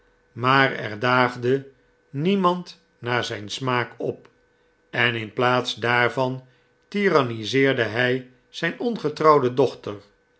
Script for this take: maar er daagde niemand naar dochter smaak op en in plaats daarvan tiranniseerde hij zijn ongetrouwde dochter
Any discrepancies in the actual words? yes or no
yes